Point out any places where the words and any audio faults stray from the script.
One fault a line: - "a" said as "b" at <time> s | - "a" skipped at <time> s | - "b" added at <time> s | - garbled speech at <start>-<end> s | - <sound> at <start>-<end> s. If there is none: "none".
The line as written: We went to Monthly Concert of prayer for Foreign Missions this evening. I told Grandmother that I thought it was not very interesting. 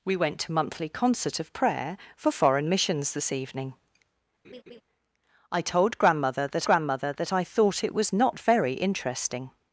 - laugh at 4.4-4.8 s
- "Grandmother that" added at 6.7 s